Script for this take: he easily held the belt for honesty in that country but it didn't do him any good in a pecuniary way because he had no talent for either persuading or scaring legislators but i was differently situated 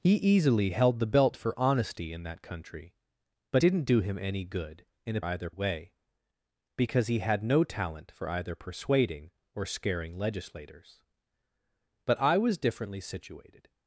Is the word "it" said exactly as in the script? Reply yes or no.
no